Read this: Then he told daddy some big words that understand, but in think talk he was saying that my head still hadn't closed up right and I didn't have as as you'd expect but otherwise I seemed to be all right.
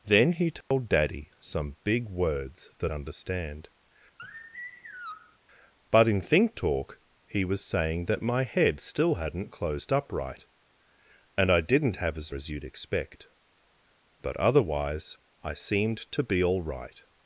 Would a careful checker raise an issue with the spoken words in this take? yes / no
no